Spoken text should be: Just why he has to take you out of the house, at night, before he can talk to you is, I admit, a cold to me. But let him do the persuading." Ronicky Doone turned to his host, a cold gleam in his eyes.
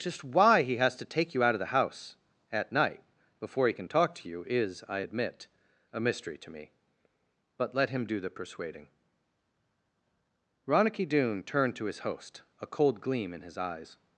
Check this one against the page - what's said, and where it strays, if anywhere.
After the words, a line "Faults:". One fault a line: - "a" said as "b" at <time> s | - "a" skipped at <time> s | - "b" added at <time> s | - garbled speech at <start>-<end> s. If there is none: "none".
Just why he has to take you out of the house, at night, before he can talk to you is, I admit, a mystery to me. But let him do the persuading." Ronicky Doone turned to his host, a cold gleam in his eyes.
Faults:
- "cold" said as "mystery" at 6.0 s